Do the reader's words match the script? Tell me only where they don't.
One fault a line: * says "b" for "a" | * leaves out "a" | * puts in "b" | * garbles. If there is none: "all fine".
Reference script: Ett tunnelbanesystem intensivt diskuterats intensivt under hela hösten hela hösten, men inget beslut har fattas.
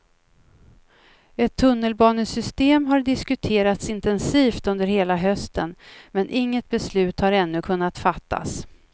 * says "har" for "intensivt"
* leaves out "hela hösten"
* puts in "ännu kunnat"